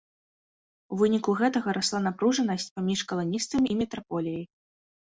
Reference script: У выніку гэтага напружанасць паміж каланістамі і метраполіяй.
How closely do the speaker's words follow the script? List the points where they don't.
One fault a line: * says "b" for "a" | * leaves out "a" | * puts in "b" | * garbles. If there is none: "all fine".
* puts in "расла"